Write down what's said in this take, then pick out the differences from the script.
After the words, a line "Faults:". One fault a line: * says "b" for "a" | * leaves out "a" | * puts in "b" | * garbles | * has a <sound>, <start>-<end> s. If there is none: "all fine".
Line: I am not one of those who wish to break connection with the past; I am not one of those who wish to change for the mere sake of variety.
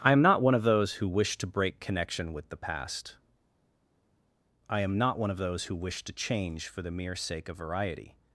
I am not one of those who wish to break connection with the past; I am not one of those who wish to change for the mere sake of variety.
Faults:
all fine